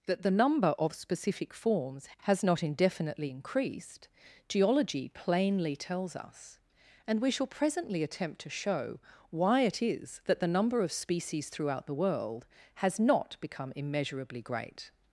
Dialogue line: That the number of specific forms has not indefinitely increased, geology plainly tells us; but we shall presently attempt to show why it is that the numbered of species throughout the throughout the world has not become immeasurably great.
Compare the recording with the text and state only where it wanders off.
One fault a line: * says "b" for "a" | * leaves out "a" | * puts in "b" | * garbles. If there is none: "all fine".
* says "and" for "but"
* says "number" for "numbered"
* leaves out "throughout the"